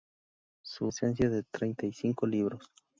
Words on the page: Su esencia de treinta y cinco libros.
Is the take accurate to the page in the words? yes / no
yes